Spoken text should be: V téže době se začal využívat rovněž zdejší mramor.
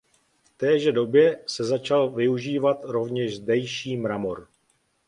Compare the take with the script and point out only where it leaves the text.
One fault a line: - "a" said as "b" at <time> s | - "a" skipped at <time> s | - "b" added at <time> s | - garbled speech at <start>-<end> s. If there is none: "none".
none